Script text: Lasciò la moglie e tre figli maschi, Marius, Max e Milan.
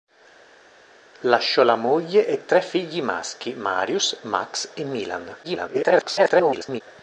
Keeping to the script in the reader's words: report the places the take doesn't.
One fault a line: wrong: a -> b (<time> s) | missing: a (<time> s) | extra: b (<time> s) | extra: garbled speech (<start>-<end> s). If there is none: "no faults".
extra: garbled speech (5.4-6.8 s)